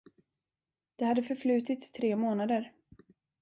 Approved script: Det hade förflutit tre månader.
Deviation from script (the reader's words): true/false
false